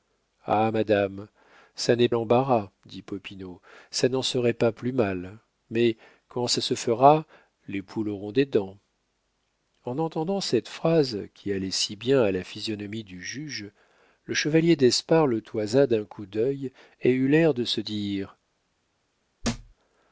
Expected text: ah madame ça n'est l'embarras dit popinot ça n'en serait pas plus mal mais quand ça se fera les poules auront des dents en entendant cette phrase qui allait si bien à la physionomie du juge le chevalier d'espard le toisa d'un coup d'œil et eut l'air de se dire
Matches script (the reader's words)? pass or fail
pass